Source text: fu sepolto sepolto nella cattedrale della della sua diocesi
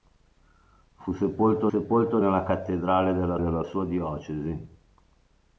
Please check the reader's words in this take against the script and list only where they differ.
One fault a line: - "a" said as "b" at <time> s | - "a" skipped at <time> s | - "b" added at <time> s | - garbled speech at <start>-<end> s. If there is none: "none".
none